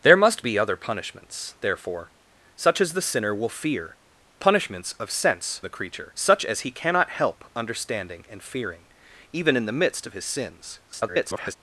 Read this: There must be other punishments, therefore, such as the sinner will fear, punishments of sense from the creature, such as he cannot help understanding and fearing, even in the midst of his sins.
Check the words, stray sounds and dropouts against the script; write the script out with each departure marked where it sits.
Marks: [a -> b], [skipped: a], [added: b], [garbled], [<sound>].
There must be other punishments, therefore, such as the sinner will fear, punishments of sense [skipped: from] the creature, such as he cannot help understanding and fearing, even in the midst of his sins. [garbled]